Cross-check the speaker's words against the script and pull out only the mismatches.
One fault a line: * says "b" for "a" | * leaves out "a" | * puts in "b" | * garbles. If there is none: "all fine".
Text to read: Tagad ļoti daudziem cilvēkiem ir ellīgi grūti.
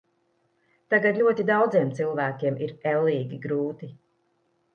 all fine